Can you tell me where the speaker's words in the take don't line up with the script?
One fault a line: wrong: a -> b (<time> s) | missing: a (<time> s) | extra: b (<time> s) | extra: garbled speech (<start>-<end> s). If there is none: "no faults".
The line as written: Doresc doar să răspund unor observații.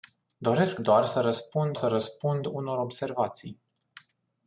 extra: să răspund (1.7 s)